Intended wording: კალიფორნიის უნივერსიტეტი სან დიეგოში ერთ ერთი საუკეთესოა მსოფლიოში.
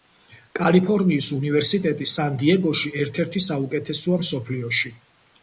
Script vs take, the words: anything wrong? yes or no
no